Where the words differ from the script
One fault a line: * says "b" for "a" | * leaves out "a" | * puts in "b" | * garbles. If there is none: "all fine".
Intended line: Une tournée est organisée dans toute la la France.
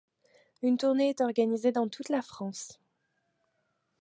* leaves out "la"